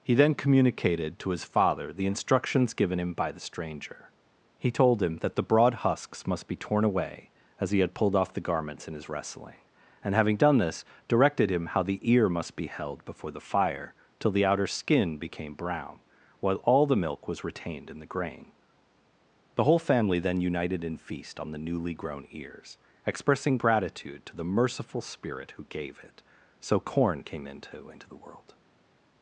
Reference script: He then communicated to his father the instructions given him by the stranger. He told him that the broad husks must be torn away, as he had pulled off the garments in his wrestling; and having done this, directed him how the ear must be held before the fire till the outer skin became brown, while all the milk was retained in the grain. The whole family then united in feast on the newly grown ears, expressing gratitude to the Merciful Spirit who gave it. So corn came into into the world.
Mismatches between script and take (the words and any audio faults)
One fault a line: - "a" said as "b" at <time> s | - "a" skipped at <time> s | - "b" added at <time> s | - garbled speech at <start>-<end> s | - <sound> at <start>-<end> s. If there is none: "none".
none